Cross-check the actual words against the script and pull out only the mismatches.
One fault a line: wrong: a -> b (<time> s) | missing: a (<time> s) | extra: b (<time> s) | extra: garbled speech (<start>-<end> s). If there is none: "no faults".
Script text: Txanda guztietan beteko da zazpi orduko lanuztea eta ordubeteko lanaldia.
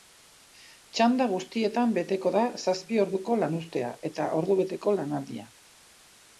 no faults